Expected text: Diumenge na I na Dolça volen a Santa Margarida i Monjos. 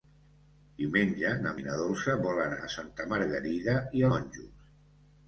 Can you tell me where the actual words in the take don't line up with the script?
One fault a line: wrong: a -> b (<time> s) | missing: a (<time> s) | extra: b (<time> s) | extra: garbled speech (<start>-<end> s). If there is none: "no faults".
no faults